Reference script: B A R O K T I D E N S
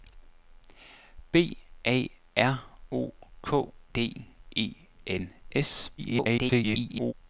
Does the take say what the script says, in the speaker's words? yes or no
no